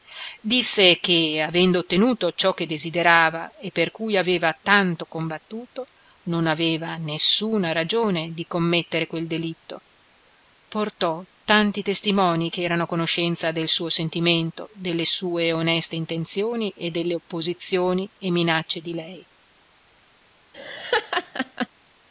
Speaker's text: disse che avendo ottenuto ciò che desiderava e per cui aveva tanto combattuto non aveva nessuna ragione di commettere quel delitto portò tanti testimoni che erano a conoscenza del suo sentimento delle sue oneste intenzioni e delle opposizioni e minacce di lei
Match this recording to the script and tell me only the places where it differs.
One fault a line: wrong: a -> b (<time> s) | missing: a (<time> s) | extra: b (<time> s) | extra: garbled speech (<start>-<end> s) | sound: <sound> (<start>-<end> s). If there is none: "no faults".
sound: laugh (20.5-21.7 s)